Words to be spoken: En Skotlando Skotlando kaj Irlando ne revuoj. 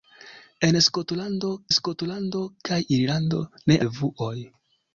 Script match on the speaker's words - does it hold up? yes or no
yes